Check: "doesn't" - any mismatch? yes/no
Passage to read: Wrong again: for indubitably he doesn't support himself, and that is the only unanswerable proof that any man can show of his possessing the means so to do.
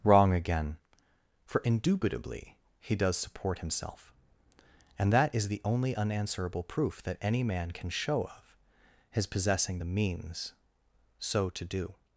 yes